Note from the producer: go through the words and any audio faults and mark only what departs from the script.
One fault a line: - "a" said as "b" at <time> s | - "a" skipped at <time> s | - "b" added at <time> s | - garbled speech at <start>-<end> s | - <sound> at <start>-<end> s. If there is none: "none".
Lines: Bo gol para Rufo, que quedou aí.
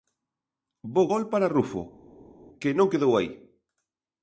- "non" added at 2.8 s